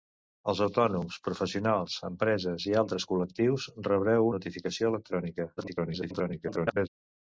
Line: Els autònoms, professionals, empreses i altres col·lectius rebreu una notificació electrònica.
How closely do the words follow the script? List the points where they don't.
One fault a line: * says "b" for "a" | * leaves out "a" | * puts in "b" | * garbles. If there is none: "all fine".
* leaves out "una"
* garbles